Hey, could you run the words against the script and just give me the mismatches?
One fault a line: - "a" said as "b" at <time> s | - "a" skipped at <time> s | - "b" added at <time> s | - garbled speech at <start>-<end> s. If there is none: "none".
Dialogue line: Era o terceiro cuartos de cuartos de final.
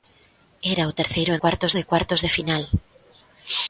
none